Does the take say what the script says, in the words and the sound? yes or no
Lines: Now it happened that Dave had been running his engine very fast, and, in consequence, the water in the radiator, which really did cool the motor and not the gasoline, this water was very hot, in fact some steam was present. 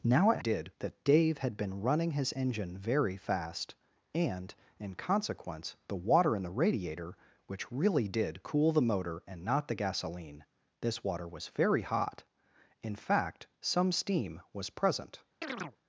no